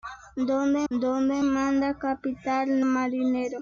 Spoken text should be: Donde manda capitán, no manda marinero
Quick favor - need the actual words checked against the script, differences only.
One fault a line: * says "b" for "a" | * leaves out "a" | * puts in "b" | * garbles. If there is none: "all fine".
* puts in "donde"
* leaves out "no manda"